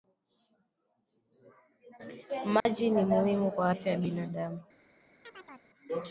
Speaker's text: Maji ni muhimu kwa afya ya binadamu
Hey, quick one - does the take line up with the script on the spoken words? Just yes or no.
yes